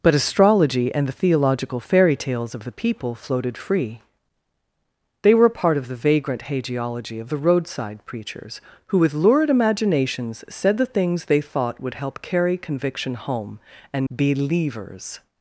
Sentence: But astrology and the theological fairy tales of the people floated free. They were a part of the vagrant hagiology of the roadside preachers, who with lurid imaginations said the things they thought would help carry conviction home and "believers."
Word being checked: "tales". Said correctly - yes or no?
yes